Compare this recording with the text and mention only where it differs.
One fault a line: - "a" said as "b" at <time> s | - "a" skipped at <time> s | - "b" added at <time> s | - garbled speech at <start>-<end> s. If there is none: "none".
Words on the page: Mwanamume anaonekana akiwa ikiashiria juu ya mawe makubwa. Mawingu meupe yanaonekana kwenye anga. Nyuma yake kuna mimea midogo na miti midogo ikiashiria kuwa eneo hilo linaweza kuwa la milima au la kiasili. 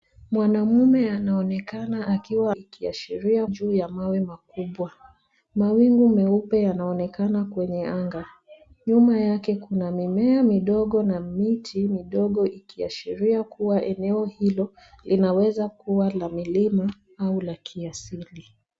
none